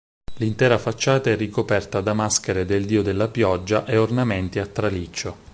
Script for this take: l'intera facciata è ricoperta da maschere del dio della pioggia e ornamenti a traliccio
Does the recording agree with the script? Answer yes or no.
yes